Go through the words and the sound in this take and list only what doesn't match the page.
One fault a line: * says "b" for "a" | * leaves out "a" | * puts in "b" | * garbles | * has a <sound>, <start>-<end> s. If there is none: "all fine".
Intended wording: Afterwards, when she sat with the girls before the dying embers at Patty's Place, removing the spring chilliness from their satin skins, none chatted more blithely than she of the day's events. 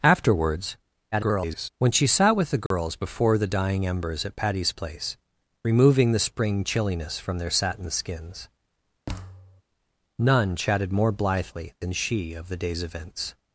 * garbles
* has a dropout, 2.7-2.7 s
* has a thud, 9.1-9.6 s